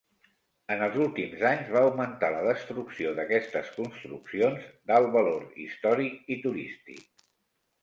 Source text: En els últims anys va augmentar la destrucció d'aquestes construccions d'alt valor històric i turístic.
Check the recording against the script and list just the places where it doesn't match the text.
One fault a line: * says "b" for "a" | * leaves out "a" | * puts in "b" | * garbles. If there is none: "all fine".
all fine